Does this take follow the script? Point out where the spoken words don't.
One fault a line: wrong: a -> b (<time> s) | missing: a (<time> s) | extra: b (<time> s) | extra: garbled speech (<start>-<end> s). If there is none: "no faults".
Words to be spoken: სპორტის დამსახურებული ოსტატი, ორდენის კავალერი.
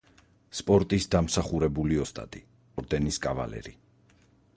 no faults